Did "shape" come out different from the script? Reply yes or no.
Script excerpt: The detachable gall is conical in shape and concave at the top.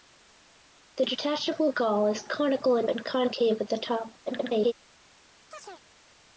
yes